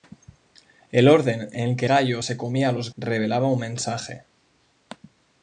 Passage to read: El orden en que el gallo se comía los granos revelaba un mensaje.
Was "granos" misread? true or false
true